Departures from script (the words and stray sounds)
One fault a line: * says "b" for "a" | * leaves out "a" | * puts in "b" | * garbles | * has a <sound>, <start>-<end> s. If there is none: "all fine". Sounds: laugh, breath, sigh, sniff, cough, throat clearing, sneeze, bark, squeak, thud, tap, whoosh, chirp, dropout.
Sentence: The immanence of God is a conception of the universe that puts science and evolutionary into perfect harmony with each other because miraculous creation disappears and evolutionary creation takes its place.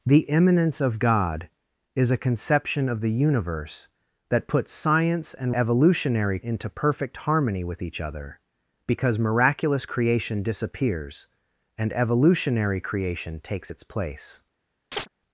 * has a chirp, 14.9-15.1 s